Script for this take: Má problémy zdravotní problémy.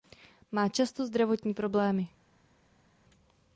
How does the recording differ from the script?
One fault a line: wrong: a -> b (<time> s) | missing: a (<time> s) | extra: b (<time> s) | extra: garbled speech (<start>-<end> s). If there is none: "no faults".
wrong: problémy -> často (0.7 s)